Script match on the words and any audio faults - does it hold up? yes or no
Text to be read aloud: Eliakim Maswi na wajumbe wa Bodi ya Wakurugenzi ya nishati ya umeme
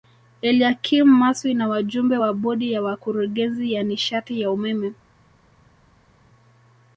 yes